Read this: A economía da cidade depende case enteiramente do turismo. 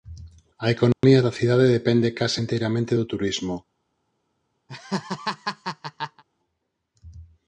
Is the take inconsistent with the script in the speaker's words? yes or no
no